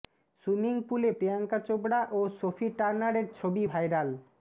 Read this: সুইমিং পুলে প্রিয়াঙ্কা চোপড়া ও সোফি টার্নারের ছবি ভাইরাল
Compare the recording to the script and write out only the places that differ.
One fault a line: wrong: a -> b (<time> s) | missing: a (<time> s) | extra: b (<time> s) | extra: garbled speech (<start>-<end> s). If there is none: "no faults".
no faults